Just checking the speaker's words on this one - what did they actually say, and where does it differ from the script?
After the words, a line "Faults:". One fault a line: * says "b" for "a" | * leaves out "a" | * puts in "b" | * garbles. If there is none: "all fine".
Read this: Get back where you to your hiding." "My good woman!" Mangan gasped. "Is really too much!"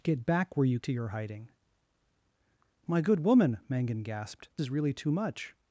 Get back where you to your hiding." "My good woman!" Mangan gasped. "Is really too much!"
Faults:
all fine